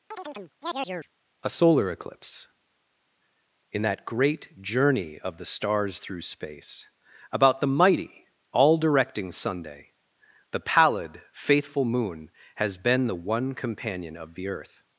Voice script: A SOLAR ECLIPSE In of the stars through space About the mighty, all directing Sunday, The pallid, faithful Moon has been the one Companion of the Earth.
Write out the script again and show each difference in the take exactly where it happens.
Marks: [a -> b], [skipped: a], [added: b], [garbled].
A SOLAR ECLIPSE In [added: that great journey] of the stars through space About the mighty, all directing Sunday, The pallid, faithful Moon has been the one Companion of the Earth.